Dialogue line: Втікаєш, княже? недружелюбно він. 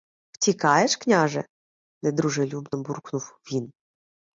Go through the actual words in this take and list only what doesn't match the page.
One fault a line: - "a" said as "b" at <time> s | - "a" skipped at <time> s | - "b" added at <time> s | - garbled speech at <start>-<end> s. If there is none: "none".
- "буркнув" added at 2.8 s